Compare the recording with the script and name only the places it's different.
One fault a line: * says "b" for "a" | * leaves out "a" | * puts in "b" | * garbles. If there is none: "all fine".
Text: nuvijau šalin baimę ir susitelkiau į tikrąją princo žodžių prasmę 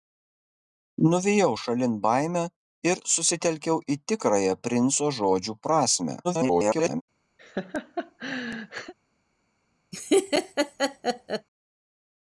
* garbles